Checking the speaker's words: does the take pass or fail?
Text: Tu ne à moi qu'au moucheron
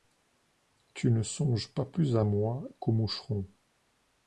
fail